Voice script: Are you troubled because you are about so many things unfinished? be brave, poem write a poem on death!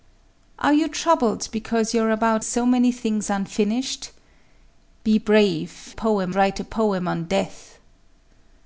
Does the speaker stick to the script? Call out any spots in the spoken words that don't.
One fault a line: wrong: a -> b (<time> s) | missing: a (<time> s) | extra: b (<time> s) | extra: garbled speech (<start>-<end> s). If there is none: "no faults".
no faults